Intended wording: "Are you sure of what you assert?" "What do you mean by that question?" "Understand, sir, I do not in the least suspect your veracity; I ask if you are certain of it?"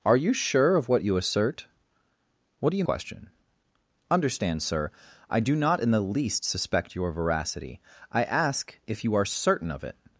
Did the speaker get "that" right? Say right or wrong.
wrong